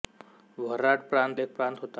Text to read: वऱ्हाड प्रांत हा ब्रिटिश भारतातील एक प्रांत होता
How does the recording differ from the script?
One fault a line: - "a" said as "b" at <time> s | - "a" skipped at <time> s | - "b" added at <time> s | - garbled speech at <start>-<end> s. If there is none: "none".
- "हा ब्रिटिश भारतातील" skipped at 1.4 s